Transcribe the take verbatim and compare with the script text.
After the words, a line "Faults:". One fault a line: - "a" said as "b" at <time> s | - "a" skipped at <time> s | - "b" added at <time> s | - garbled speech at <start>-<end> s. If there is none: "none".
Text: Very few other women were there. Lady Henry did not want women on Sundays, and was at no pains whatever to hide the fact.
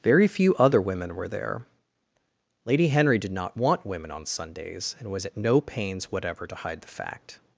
Very few other women were there. Lady Henry did not want women on Sundays, and was at no pains whatever to hide the fact.
Faults:
none